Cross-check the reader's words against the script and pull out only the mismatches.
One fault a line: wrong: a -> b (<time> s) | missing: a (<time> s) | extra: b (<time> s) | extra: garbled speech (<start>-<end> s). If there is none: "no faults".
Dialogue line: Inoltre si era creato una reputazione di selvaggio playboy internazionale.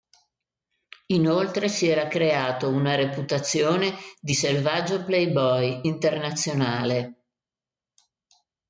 no faults